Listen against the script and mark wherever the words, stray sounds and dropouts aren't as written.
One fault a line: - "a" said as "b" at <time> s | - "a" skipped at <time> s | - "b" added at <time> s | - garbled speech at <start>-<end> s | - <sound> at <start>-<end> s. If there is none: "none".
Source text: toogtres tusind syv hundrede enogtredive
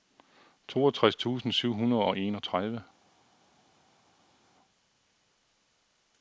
- "og" added at 2.0 s